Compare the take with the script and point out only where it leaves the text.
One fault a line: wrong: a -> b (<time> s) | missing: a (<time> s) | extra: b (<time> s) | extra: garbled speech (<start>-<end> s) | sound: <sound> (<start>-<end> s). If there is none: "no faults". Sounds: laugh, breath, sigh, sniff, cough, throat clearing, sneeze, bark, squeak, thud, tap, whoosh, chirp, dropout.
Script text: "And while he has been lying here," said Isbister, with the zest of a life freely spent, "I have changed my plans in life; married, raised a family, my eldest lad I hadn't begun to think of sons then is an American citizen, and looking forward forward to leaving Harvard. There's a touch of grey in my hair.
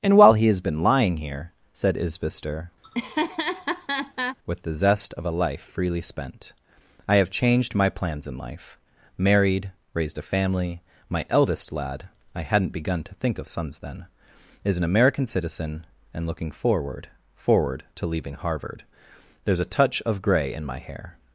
sound: laugh (2.8-4.4 s)